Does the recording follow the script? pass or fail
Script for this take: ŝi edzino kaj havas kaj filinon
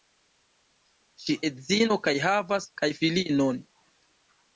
pass